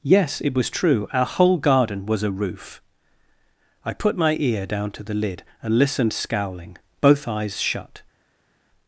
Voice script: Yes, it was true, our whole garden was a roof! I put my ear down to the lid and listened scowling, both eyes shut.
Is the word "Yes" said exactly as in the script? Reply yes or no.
yes